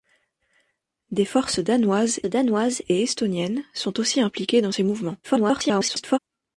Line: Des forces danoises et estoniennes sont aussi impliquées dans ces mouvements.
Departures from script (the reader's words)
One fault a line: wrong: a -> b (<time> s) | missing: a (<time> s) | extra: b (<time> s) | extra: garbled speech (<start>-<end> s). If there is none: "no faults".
extra: danoises (2.3 s)
extra: garbled speech (5.2-6.2 s)